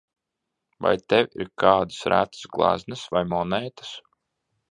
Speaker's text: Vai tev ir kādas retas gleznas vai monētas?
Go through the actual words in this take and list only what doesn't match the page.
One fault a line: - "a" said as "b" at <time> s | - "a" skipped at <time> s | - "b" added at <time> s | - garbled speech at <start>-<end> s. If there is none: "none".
none